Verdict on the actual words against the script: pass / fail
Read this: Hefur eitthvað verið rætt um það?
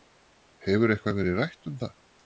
pass